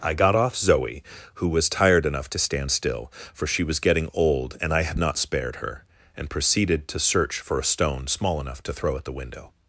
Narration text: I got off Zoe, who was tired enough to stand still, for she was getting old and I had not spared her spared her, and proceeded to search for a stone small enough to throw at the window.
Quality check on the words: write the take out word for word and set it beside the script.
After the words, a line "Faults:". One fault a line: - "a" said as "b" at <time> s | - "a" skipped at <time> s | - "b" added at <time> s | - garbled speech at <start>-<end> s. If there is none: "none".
I got off Zoe, who was tired enough to stand still, for she was getting old and I had not spared her, and proceeded to search for a stone small enough to throw at the window.
Faults:
- "spared her" skipped at 5.8 s